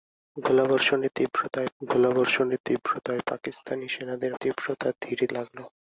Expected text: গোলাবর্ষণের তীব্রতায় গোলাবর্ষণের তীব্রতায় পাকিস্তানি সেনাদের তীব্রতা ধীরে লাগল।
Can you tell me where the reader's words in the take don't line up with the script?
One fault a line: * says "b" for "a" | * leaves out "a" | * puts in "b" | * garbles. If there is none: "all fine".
all fine